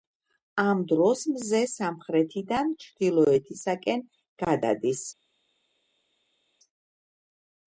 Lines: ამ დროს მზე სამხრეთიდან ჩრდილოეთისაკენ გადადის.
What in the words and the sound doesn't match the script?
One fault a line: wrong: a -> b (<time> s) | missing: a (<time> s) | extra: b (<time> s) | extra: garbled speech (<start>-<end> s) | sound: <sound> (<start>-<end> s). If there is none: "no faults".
no faults